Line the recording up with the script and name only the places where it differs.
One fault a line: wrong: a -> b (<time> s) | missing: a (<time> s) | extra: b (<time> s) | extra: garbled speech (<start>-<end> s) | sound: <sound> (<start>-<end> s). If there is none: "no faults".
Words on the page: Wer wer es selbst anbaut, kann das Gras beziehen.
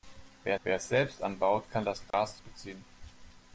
sound: dropout (2.1-2.1 s)